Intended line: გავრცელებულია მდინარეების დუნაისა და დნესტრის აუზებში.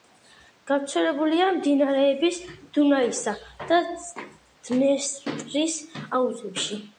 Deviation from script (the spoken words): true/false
false